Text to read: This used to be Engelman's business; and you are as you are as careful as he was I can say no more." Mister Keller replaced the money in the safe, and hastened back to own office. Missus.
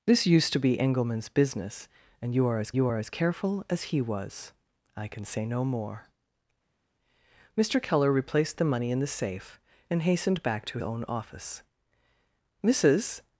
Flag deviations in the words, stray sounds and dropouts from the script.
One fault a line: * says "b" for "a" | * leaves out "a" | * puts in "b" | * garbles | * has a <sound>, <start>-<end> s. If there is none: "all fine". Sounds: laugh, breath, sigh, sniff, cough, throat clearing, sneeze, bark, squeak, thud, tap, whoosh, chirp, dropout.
all fine